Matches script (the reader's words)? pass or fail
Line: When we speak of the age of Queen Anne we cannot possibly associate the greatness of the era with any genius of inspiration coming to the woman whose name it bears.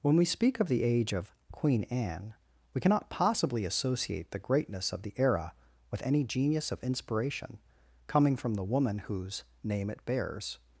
fail